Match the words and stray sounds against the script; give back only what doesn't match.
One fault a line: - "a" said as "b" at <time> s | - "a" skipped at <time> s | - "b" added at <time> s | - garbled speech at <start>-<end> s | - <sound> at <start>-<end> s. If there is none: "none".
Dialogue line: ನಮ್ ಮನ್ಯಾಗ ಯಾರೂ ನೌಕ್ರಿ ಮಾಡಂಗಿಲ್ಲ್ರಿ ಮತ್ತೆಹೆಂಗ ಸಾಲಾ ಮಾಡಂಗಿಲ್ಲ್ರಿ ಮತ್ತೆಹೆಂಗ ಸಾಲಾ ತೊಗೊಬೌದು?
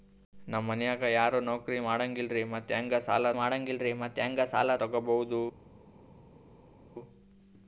none